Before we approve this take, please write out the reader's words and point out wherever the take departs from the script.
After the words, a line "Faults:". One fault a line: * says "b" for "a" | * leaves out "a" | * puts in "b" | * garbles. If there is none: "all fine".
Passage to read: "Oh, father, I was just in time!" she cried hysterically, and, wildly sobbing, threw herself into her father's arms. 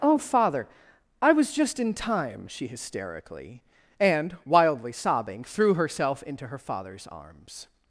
"Oh, father, I was just in time!" she hysterically, and, wildly sobbing, threw herself into her father's arms.
Faults:
* leaves out "cried"